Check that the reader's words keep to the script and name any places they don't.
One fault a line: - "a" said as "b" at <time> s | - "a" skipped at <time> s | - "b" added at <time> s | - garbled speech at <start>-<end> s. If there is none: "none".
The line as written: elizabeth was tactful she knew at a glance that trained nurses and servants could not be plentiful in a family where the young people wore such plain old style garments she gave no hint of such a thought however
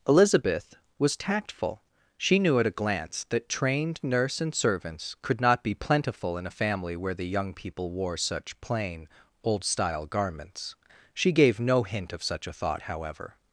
- "nurses" said as "nurse" at 4.0 s